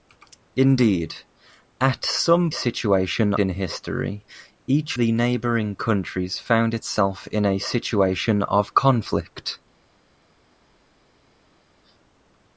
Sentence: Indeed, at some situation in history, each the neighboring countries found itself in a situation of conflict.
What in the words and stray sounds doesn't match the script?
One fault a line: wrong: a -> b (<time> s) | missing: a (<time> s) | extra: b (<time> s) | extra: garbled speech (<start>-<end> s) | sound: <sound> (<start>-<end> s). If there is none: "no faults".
no faults